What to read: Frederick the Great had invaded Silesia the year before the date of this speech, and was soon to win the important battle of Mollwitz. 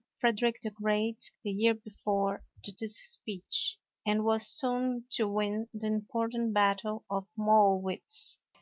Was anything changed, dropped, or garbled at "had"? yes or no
yes